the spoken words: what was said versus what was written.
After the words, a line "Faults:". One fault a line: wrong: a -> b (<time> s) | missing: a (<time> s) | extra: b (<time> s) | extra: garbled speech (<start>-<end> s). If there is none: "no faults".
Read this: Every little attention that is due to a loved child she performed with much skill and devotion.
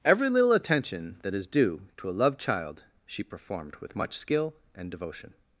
Every little attention that is due to a loved child she performed with much skill and devotion.
Faults:
no faults